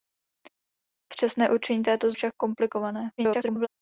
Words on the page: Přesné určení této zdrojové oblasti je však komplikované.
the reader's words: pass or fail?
fail